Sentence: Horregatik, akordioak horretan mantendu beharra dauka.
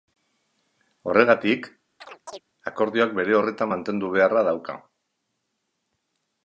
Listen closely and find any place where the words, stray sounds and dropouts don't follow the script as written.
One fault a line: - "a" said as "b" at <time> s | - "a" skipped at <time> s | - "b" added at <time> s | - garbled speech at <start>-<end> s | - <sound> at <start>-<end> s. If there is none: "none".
- chirp at 2.0-2.4 s
- "bere" added at 3.2 s